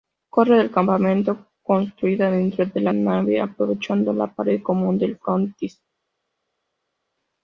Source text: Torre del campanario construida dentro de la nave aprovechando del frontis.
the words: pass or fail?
fail